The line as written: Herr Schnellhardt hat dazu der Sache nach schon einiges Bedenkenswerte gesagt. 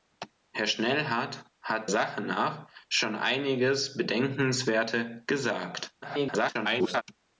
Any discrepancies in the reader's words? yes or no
yes